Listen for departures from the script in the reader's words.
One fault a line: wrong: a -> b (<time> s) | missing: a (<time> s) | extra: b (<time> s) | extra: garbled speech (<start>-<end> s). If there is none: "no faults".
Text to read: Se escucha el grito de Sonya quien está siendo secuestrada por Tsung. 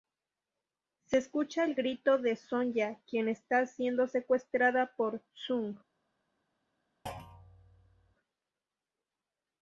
no faults